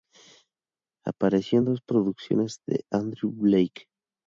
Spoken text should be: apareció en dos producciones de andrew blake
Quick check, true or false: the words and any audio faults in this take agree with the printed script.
true